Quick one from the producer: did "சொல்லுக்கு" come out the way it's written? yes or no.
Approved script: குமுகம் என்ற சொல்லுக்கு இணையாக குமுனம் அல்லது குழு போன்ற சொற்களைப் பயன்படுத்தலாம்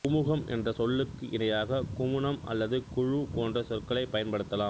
yes